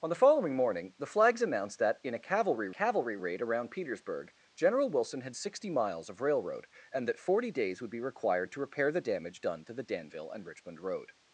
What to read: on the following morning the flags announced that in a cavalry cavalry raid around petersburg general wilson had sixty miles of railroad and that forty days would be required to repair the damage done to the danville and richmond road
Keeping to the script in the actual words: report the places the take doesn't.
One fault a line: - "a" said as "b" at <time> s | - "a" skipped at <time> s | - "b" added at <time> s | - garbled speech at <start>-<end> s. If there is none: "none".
none